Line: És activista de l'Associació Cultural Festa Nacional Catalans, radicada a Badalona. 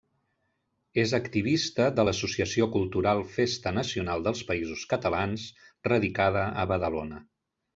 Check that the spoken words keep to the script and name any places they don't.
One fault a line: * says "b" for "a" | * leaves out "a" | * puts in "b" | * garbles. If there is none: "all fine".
* puts in "dels Països"